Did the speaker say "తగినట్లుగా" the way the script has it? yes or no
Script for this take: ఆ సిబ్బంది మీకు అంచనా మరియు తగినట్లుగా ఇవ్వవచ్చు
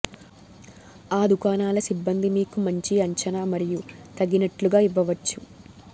yes